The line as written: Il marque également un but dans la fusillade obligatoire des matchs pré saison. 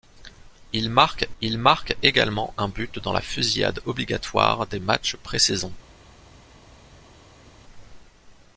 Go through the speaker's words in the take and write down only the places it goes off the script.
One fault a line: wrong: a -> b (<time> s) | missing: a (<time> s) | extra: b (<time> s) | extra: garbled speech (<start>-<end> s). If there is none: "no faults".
extra: il marque (1.4 s)